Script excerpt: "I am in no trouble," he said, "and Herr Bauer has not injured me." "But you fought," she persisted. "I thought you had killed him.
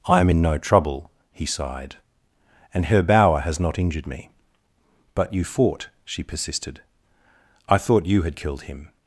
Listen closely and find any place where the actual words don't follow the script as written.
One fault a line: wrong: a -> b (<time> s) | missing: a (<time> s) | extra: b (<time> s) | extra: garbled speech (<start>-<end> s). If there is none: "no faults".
wrong: said -> sighed (1.5 s)